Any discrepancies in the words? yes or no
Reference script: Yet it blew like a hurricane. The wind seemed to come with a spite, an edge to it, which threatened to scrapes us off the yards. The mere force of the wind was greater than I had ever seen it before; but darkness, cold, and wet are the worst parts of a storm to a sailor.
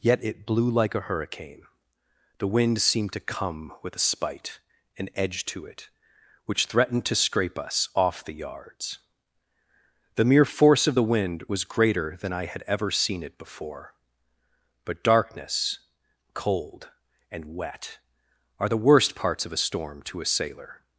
yes